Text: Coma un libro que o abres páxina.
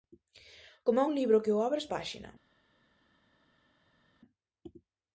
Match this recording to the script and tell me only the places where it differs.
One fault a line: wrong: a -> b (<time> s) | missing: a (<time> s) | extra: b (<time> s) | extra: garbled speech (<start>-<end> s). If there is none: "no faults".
no faults